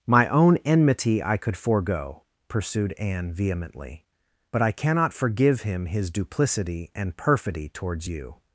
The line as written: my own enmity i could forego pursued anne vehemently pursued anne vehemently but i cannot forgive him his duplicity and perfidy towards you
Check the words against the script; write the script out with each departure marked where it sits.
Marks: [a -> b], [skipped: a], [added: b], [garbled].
my own enmity i could forego pursued anne vehemently [skipped: pursued anne vehemently] but i cannot forgive him his duplicity and perfidy towards you